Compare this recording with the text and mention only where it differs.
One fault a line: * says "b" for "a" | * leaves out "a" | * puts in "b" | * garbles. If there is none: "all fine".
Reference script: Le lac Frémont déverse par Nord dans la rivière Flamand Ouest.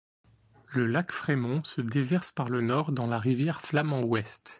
* puts in "se"
* puts in "le"